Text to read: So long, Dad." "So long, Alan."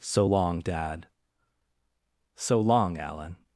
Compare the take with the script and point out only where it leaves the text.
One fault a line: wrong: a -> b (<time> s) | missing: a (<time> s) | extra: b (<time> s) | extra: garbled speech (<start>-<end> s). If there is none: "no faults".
no faults